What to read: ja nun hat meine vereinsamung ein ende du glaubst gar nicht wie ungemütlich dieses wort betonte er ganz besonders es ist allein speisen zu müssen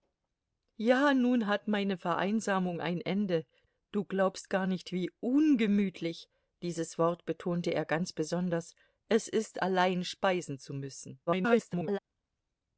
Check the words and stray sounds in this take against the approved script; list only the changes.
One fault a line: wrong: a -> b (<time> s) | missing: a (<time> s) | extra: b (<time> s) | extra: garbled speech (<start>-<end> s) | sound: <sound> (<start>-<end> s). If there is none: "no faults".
extra: garbled speech (11.3-12.0 s)